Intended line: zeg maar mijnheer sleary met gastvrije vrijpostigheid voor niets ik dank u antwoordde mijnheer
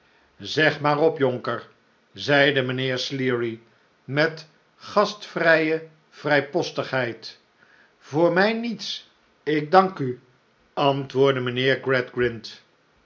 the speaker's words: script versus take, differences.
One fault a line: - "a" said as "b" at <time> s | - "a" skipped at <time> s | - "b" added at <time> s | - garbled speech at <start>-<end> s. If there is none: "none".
- "op jonker zeide" added at 1.0 s
- "mij" added at 8.3 s